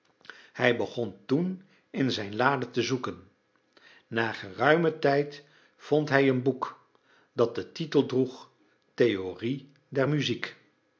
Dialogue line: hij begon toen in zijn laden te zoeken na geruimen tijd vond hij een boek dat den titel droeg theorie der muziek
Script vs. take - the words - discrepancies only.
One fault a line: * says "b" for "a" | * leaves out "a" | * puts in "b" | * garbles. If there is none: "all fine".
all fine